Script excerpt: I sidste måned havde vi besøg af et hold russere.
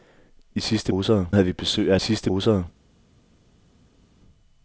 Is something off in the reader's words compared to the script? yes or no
yes